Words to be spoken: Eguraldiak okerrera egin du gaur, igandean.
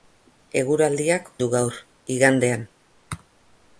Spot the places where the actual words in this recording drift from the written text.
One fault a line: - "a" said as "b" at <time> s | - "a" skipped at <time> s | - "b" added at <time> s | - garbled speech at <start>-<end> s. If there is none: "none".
- "okerrera egin" skipped at 1.3 s